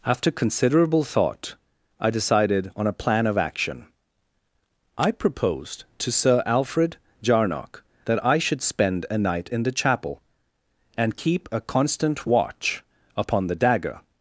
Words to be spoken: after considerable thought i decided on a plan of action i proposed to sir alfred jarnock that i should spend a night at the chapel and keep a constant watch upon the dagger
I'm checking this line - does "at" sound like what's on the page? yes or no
no